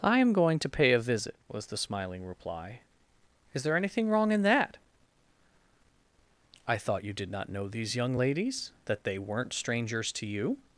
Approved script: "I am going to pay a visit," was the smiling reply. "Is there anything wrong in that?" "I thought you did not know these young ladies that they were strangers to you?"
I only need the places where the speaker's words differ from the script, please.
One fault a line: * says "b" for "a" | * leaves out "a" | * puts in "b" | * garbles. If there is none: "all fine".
* says "weren't" for "were"